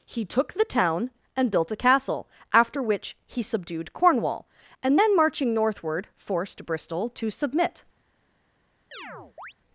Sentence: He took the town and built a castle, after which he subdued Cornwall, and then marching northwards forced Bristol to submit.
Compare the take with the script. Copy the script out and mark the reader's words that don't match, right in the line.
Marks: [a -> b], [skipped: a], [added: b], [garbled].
He took the town and built a castle, after which he subdued Cornwall, and then marching [northwards -> northward] forced Bristol to submit.